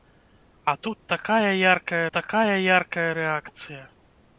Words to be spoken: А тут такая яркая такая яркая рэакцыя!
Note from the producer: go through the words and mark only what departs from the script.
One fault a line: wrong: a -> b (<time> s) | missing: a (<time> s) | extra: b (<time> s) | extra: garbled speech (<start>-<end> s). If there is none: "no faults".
no faults